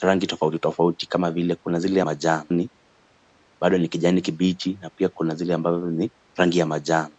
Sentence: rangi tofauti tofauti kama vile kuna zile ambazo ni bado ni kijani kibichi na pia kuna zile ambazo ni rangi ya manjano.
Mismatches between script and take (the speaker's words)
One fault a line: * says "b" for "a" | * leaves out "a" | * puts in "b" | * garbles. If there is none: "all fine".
* says "manjano" for "ambazo"